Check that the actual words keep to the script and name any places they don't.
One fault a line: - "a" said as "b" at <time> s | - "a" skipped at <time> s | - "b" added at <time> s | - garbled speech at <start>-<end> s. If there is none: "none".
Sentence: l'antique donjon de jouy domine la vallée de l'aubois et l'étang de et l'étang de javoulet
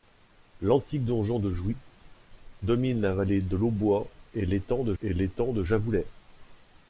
none